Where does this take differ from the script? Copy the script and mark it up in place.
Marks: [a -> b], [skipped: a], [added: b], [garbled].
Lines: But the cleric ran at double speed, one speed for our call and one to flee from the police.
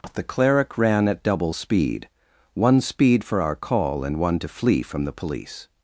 [skipped: But] the cleric ran at double speed, one speed for our call and one to flee from the police.